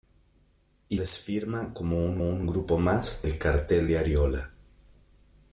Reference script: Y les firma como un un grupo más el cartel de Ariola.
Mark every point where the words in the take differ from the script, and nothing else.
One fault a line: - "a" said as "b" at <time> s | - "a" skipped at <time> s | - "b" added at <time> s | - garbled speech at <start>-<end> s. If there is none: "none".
none